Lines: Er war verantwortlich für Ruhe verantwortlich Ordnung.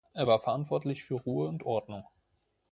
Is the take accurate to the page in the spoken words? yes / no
no